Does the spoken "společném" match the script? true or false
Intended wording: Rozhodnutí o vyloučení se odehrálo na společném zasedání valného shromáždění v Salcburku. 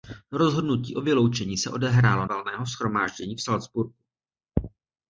false